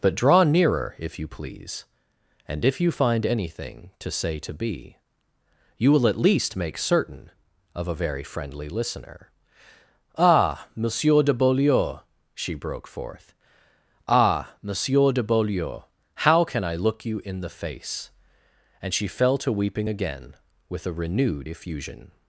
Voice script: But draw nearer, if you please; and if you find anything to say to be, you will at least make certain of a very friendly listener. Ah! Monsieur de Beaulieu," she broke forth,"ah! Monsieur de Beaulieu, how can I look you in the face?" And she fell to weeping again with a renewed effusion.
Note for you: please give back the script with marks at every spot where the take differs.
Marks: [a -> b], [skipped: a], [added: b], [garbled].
But draw nearer, if you please; and if you find anything to say to be, you will at least make certain of a very friendly listener. Ah! Monsieur de Beaulieu," she broke forth,"ah! Monsieur de Beaulieu, how can I look you in the face?" And she fell to weeping again with a renewed effusion.